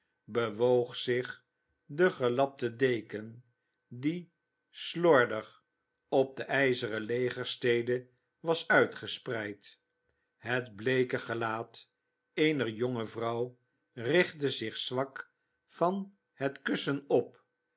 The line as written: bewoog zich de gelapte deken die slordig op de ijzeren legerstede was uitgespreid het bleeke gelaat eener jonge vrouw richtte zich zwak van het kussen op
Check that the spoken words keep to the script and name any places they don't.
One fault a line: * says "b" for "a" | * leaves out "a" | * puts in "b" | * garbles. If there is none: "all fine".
all fine